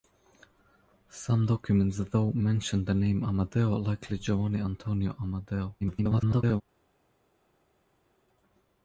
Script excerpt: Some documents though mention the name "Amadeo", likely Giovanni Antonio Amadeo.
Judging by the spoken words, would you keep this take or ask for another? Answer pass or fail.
fail